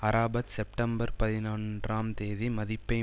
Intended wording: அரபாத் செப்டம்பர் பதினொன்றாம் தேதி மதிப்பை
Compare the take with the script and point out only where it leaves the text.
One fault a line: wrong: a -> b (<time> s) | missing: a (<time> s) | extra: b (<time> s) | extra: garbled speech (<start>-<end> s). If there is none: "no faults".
no faults